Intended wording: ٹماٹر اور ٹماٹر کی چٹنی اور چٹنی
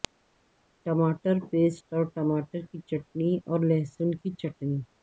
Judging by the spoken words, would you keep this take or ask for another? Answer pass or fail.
fail